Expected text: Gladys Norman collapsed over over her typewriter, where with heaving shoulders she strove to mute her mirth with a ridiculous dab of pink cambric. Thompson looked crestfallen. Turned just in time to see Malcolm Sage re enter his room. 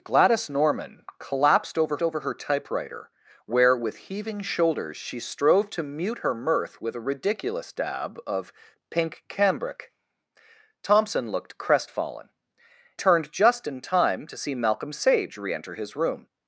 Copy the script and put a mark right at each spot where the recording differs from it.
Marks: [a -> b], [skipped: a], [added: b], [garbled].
Gladys Norman collapsed over over her typewriter, where with heaving shoulders she strove to mute her mirth with a ridiculous dab of pink cambric. Thompson looked crestfallen. Turned just in time to see Malcolm Sage re enter his room.